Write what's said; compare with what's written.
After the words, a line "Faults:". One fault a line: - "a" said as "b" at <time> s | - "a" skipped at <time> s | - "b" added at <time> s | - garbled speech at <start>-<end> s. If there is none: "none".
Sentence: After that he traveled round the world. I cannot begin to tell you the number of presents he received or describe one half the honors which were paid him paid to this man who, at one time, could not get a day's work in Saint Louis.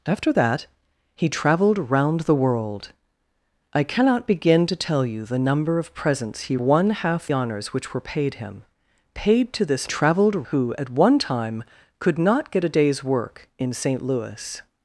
After that he traveled round the world. I cannot begin to tell you the number of presents he one half honors which were paid him paid to this traveled who, at one time, could not get a day's work in Saint Louis.
Faults:
- "received or describe" skipped at 6.6 s
- "the" skipped at 7.3 s
- "man" said as "traveled" at 9.9 s